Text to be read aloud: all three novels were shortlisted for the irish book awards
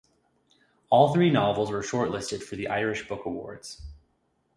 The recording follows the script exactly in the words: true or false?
true